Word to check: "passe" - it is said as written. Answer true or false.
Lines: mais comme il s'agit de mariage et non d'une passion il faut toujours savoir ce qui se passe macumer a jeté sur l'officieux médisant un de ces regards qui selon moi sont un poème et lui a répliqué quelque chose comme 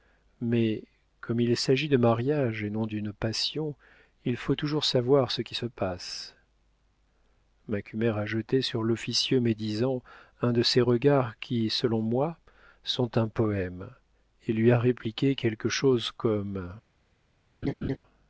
true